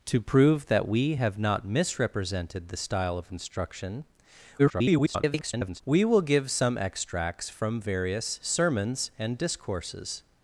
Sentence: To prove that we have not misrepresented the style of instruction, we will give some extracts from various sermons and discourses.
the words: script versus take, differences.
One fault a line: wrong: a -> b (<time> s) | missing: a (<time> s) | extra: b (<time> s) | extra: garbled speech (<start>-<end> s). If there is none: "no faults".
extra: garbled speech (4.6-5.8 s)